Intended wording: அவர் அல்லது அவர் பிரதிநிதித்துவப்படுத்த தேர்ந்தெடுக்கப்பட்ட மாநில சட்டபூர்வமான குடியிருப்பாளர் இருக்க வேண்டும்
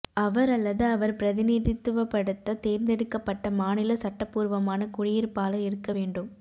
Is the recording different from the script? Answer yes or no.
no